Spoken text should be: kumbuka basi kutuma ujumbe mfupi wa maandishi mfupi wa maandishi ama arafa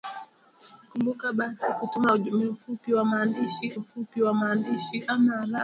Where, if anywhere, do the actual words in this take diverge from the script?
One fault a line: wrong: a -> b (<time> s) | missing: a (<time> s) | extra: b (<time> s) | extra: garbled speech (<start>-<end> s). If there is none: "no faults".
no faults